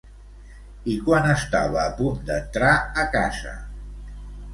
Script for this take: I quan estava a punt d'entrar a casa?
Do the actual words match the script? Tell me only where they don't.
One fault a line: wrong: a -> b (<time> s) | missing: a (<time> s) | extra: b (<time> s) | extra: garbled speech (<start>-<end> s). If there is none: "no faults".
no faults